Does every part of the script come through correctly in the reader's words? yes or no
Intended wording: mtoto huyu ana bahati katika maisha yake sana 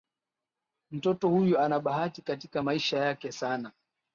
yes